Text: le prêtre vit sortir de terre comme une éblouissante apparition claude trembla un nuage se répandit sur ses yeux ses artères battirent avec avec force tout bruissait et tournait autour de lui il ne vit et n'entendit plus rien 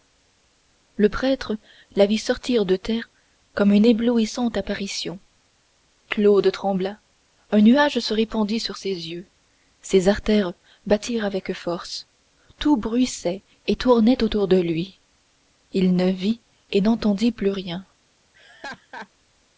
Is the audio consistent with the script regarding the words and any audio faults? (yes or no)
no